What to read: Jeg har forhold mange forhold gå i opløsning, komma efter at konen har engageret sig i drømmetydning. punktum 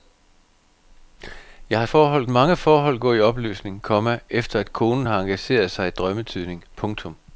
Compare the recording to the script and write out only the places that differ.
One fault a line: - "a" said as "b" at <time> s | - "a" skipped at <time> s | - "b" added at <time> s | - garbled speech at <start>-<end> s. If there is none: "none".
none